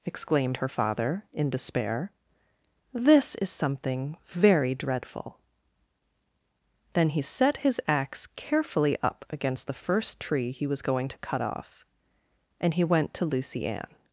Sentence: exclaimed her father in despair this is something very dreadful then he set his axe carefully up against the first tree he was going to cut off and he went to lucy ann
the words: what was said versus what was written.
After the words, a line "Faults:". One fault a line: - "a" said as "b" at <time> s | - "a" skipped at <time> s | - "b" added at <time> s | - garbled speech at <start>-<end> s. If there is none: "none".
exclaimed her father in despair this is something very dreadful then he set his axe carefully up against the first tree he was going to cut off and he went to lucy ann
Faults:
none